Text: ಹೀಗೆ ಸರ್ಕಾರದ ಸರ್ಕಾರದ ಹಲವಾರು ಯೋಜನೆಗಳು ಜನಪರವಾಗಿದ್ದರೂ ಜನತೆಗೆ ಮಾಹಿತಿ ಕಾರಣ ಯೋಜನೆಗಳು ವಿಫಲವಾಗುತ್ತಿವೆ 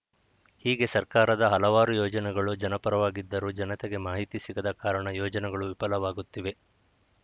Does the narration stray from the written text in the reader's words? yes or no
yes